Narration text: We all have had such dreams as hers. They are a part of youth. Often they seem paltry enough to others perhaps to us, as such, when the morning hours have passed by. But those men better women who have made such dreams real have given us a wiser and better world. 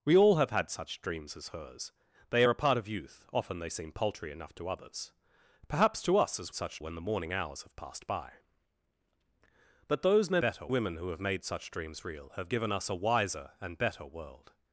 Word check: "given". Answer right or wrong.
right